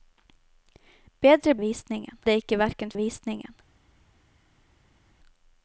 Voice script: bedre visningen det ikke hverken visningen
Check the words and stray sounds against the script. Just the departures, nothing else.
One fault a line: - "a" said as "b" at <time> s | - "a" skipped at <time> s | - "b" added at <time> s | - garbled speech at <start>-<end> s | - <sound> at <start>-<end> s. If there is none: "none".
none